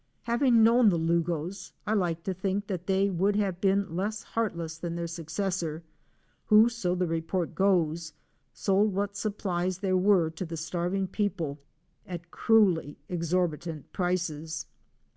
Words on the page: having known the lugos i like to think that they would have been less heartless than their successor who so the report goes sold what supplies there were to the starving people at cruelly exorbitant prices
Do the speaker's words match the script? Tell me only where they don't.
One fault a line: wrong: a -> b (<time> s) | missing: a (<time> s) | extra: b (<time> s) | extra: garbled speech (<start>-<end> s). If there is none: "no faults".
no faults